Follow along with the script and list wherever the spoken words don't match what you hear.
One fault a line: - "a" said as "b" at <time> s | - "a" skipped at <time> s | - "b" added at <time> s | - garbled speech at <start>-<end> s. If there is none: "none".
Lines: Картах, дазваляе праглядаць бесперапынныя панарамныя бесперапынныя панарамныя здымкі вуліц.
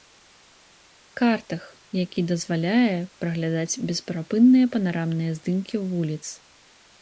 - "які" added at 2.0 s
- "бесперапынныя панарамныя" skipped at 5.3 s